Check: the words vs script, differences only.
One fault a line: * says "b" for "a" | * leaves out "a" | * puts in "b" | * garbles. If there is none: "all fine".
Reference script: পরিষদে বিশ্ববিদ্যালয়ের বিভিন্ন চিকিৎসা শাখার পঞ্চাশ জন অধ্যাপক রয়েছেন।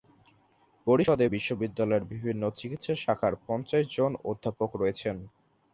all fine